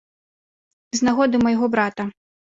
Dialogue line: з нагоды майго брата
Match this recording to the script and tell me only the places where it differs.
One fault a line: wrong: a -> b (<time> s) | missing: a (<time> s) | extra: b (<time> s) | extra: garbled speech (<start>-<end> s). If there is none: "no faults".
no faults